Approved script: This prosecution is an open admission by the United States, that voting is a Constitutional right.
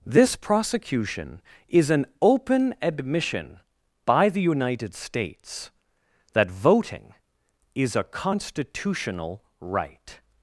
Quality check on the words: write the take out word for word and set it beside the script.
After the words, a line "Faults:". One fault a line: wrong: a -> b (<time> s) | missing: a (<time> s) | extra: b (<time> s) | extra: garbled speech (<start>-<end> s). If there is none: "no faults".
This prosecution is an open admission by the United States, that voting is a Constitutional right.
Faults:
no faults